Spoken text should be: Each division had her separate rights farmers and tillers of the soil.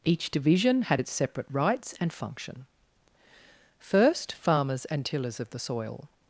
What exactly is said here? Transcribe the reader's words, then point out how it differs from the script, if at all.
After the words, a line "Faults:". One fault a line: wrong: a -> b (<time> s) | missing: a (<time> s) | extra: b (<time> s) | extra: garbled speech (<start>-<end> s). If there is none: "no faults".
Each division had its separate rights and function. First, farmers and tillers of the soil.
Faults:
wrong: her -> its (1.0 s)
extra: and function First (2.0 s)